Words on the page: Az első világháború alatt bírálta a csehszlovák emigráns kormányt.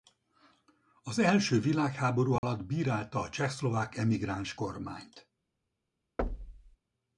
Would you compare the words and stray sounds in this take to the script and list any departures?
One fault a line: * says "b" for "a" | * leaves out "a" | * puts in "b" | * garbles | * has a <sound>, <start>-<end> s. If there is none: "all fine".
* has a dropout, 2.4-2.4 s
* has a thud, 6.2-6.8 s